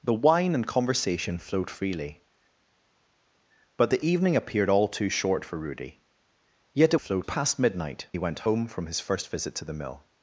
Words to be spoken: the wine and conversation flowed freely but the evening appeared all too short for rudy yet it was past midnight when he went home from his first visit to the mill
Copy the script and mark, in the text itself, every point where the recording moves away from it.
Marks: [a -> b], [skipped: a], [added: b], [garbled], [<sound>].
the wine and conversation flowed freely but the evening appeared all too short for rudy yet it [was -> flowed] past midnight [skipped: when] he went home from his first visit to the mill